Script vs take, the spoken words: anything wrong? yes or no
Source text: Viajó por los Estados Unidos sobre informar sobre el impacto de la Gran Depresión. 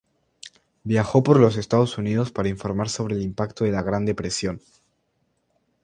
yes